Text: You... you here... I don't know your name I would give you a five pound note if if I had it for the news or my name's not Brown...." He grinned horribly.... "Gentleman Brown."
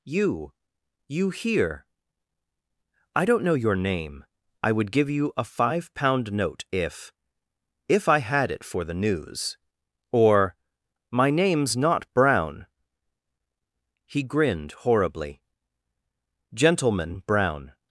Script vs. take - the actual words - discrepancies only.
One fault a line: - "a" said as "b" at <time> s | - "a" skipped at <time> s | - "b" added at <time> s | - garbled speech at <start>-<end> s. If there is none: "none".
none